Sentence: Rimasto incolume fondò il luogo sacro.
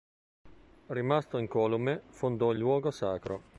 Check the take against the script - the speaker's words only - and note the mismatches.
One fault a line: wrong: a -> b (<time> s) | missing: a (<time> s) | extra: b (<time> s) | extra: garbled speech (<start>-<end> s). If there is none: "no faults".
no faults